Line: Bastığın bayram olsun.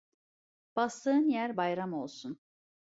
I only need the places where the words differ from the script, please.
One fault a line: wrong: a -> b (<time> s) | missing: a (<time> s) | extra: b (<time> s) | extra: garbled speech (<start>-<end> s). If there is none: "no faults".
extra: yer (1.3 s)